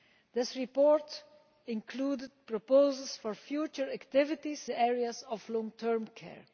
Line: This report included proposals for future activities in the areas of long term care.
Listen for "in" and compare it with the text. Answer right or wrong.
wrong